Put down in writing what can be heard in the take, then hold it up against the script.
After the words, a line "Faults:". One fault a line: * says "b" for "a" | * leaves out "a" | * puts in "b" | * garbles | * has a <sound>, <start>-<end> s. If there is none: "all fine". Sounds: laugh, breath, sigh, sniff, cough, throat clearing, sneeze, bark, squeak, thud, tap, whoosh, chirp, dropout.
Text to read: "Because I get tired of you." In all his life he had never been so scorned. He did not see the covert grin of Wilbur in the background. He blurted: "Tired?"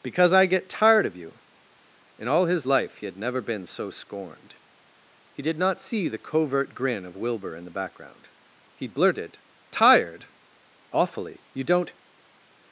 "Because I get tired of you." In all his life he had never been so scorned. He did not see the covert grin of Wilbur in the background. He blurted: "Tired?" "Awfully. You don't
Faults:
* puts in "Awfully You don't"